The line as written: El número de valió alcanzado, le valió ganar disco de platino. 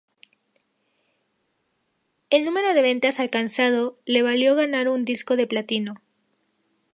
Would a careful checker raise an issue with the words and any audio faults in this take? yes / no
yes